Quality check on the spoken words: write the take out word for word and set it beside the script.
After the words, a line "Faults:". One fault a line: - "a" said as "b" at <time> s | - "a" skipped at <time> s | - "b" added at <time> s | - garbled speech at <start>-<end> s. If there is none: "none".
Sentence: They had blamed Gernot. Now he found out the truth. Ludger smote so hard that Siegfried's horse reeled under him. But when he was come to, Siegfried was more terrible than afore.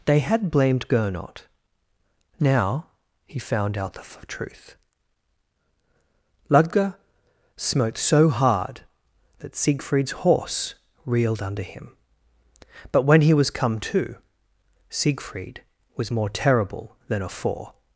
They had blamed Gernot. Now he found out the f truth. Ludger smote so hard that Siegfried's horse reeled under him. But when he was come to, Siegfried was more terrible than afore.
Faults:
- "f" added at 4.0 s